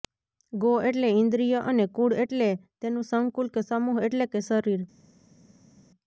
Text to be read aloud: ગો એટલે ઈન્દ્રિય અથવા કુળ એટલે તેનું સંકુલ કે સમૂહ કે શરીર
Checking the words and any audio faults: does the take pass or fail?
fail